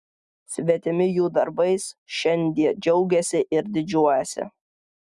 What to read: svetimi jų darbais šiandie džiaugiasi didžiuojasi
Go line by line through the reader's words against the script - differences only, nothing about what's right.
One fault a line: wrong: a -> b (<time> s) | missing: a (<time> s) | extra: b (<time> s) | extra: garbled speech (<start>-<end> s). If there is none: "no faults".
extra: ir (3.6 s)